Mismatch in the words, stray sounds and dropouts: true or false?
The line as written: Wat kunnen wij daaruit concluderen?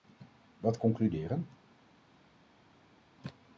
true